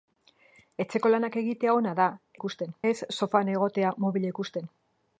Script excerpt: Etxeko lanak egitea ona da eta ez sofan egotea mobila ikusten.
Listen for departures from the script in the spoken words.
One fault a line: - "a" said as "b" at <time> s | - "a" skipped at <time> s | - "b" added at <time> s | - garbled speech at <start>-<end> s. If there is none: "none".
- "eta" said as "ikusten" at 2.4 s